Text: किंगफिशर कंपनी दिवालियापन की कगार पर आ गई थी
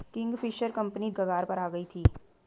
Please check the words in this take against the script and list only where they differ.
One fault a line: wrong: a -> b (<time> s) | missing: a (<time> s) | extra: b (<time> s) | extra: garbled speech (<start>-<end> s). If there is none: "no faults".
missing: दिवालियापन की (1.1 s)